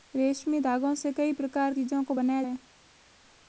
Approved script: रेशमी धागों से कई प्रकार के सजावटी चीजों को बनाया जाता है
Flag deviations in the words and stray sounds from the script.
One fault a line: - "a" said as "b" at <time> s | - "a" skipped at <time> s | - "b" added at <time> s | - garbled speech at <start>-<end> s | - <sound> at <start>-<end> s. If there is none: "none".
- "के सजावटी" skipped at 1.7 s
- "जाता" skipped at 2.4 s